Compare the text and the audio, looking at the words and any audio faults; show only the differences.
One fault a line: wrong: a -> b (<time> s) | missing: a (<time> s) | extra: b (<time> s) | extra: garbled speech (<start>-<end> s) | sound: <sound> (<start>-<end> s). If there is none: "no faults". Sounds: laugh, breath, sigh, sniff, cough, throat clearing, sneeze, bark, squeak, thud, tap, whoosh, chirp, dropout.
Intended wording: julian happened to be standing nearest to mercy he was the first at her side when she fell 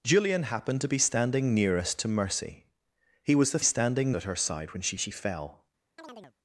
wrong: first -> standing (3.6 s)
extra: she (5.0 s)
sound: chirp (6.0-6.3 s)